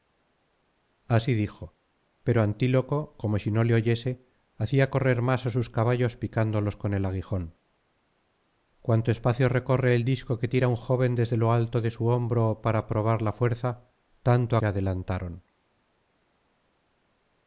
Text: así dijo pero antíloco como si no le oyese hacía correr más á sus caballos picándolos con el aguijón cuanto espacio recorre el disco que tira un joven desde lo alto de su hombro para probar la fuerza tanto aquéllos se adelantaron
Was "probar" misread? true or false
false